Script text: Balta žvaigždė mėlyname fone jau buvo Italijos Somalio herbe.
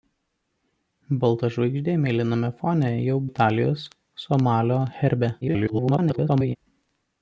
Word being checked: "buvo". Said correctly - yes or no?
no